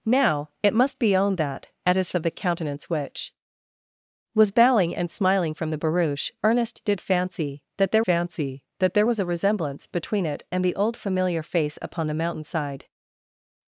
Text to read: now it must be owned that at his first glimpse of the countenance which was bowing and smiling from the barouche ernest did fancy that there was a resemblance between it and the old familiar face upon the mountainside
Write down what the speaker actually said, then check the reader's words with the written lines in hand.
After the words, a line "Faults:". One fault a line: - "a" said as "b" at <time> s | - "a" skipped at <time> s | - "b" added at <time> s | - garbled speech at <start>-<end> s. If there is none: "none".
now it must be owned that at his of the countenance which was bowing and smiling from the barouche ernest did fancy that there fancy that there was a resemblance between it and the old familiar face upon the mountainside
Faults:
- "first glimpse" skipped at 2.1 s
- "fancy that there" added at 8.0 s